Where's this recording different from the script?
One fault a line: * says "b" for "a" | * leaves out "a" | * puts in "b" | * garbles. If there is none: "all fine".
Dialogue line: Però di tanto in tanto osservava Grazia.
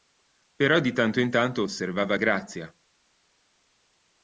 all fine